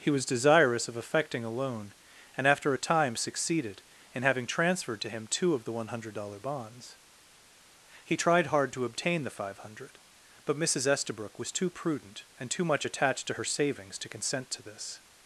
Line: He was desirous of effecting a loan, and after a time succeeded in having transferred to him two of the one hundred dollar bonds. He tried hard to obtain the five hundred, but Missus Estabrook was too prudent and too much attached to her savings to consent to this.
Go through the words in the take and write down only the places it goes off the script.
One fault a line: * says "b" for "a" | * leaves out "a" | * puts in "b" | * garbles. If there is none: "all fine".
all fine